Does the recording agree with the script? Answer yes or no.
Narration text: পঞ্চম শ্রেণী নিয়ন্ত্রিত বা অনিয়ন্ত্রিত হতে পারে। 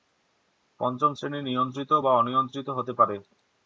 yes